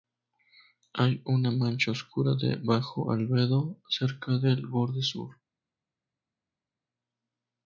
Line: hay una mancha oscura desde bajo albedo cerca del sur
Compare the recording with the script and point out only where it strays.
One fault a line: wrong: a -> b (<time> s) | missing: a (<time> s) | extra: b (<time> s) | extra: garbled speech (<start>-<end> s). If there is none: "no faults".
wrong: desde -> de (2.3 s)
extra: borde (4.7 s)